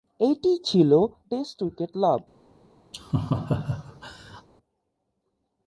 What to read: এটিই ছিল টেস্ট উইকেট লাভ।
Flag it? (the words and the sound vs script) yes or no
yes